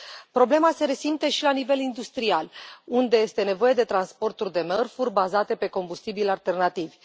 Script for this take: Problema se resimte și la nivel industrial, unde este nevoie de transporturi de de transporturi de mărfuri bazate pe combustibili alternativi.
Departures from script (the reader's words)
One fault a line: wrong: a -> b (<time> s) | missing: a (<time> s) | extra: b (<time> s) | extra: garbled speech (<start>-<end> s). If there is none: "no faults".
missing: de transporturi de (4.6 s)